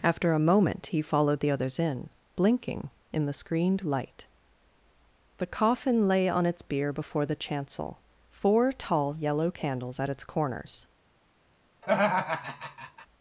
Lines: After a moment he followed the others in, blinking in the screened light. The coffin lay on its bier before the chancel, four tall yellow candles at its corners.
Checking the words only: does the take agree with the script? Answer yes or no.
yes